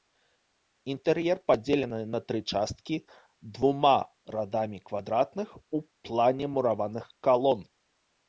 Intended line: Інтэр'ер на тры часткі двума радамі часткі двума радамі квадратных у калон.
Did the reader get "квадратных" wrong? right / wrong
wrong